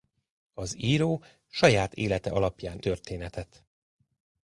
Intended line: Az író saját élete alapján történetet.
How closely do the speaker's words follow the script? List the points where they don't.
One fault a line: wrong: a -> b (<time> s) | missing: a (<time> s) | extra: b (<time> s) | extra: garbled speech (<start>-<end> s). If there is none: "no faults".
no faults